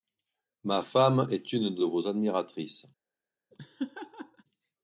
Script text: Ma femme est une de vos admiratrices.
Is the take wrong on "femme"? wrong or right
right